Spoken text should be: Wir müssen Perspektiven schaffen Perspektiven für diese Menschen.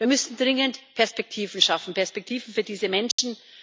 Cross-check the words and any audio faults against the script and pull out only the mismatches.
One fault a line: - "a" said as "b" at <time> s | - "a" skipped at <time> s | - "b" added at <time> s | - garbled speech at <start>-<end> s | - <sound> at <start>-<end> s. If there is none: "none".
- "dringend" added at 0.4 s
- dropout at 3.1-3.2 s